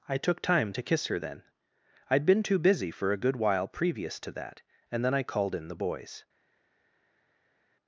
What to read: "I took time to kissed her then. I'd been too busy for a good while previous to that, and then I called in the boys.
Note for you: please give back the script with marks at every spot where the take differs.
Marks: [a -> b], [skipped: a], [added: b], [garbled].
"I took time to [kissed -> kiss] her then. I'd been too busy for a good while previous to that, and then I called in the boys.